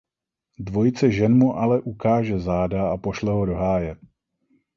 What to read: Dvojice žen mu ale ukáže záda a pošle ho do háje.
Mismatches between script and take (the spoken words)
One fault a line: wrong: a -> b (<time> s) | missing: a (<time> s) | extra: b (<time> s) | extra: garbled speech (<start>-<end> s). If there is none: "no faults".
no faults